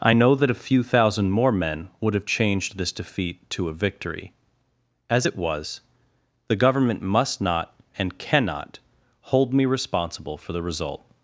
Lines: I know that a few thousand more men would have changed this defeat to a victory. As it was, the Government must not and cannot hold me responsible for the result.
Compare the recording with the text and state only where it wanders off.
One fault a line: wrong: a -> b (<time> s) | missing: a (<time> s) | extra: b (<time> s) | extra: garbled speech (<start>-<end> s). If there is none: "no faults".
no faults